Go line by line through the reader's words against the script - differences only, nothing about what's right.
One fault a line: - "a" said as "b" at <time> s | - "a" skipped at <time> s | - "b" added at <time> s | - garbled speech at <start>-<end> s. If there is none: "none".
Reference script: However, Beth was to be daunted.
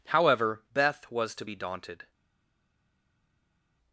none